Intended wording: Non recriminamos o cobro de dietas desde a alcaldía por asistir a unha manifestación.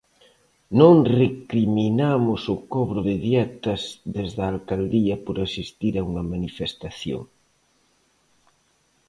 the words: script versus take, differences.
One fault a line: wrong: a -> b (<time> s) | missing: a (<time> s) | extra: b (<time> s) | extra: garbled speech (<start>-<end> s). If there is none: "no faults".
no faults